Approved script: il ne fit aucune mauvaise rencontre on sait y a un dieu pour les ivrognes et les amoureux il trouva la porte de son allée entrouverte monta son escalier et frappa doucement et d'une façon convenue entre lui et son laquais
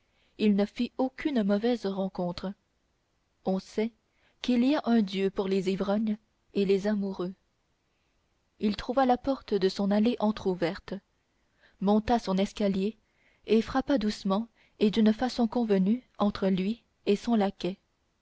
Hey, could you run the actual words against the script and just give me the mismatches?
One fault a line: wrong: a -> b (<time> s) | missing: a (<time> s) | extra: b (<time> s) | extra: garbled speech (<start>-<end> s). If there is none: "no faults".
extra: qu'il (4.4 s)